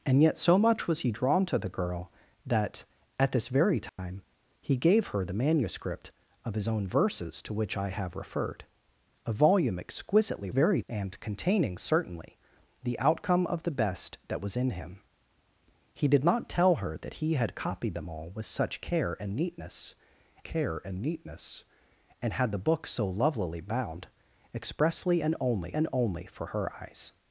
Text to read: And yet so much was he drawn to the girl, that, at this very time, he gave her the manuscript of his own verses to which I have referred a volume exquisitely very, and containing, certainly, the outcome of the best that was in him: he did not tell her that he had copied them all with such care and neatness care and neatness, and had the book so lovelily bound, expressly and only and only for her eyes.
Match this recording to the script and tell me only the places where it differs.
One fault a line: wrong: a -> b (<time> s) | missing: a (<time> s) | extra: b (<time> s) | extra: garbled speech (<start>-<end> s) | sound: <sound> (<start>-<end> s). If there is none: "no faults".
sound: dropout (3.9-4.0 s)